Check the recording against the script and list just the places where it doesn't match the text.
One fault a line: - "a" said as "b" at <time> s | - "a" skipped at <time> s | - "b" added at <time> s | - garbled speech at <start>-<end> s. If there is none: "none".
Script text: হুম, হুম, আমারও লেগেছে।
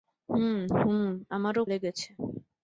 none